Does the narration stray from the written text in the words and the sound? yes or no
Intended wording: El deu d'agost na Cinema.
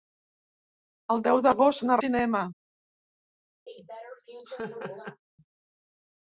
yes